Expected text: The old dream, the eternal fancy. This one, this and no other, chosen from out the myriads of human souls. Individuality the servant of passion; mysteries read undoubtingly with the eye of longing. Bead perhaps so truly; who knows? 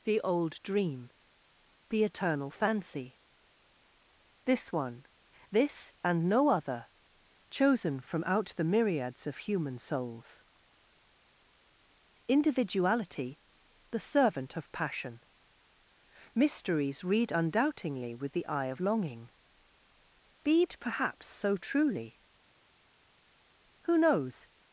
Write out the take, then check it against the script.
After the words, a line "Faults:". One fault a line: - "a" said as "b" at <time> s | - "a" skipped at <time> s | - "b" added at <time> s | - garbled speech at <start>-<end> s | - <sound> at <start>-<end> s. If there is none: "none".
The old dream, the eternal fancy. This one, this and no other, chosen from out the myriads of human souls. Individuality the servant of passion; mysteries read undoubtingly with the eye of longing. Bead perhaps so truly; who knows?
Faults:
none